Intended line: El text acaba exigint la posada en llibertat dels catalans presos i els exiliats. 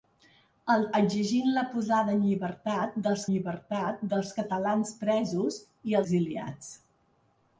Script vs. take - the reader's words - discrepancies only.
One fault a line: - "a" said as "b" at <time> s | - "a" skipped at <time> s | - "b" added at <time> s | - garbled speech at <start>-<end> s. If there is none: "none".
- "text acaba" skipped at 0.8 s
- "llibertat dels" added at 3.3 s
- "els" skipped at 6.0 s